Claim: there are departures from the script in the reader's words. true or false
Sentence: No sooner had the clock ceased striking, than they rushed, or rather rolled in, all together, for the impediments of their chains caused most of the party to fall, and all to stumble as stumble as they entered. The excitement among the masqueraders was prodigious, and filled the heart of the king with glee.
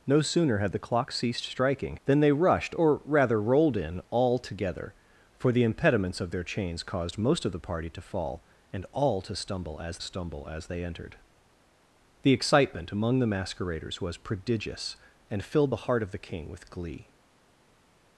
false